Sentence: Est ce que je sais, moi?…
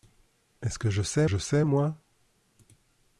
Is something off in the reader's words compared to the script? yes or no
yes